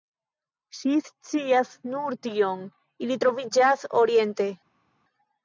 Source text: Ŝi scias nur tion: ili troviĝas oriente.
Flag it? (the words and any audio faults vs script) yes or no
no